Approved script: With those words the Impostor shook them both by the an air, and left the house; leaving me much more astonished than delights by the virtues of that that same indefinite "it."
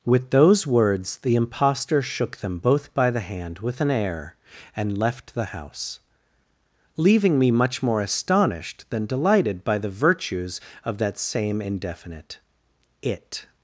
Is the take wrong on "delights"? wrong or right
wrong